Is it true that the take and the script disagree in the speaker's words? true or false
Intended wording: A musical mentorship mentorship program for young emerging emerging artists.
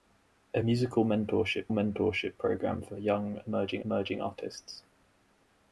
false